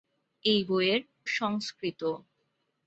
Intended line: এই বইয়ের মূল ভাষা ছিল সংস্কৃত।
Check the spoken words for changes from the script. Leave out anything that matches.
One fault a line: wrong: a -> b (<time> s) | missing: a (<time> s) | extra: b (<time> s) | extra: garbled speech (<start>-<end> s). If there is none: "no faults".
missing: মূল ভাষা ছিল (1.0 s)